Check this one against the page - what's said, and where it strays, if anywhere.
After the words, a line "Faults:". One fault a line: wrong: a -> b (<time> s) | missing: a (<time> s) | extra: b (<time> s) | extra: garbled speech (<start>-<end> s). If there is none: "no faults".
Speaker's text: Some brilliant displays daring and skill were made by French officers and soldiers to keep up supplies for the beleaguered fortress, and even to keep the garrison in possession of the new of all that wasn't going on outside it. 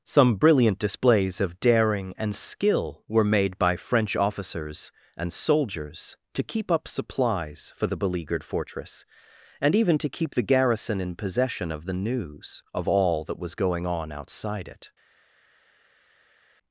Some brilliant displays of daring and skill were made by French officers and soldiers to keep up supplies for the beleaguered fortress, and even to keep the garrison in possession of the news of all that was going on outside it.
Faults:
extra: of (1.4 s)
wrong: new -> news (11.9 s)
wrong: wasn't -> was (13.4 s)